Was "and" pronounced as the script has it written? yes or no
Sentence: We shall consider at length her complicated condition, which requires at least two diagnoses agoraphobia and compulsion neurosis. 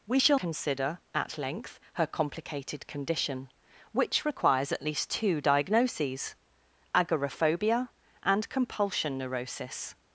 yes